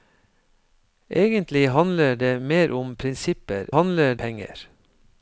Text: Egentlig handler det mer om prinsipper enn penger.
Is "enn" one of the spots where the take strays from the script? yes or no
yes